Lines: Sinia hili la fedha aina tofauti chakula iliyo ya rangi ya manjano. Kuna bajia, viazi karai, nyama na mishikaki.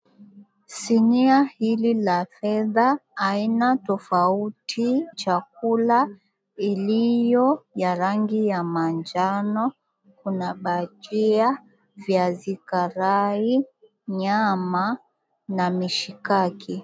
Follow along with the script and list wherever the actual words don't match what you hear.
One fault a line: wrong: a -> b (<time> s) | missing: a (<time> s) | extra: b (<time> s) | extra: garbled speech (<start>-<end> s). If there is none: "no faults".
no faults